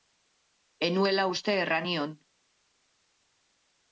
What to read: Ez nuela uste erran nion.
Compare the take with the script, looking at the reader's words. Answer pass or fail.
pass